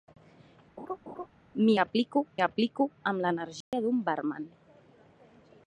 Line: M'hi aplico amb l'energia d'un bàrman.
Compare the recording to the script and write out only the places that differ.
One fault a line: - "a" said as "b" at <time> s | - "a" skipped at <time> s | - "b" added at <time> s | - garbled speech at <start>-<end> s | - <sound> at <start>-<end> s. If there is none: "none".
- laugh at 0.8-1.3 s
- "aplico" added at 2.5 s
- dropout at 3.6-3.7 s